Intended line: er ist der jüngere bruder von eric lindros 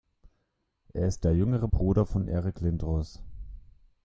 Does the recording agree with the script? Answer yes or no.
yes